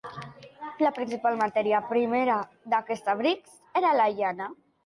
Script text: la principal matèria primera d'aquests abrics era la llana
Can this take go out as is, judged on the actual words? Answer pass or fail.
pass